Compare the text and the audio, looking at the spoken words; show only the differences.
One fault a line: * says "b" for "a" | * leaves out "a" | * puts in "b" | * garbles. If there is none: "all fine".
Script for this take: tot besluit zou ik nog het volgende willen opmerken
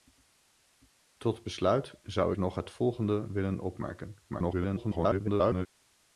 * leaves out "ik"
* garbles